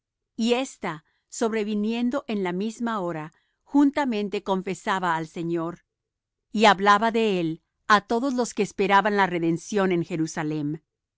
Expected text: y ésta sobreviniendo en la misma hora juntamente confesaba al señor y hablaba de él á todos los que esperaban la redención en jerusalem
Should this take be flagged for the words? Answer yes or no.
no